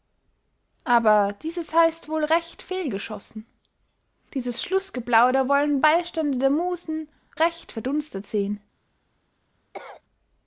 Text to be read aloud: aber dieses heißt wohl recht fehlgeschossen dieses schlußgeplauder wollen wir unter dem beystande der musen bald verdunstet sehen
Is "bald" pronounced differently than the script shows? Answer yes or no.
yes